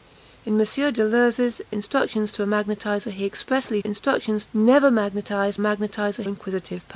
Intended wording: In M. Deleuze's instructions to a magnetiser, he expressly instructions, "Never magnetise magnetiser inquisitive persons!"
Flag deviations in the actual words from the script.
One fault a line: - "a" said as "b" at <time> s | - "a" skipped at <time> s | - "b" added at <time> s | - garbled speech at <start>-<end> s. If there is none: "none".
none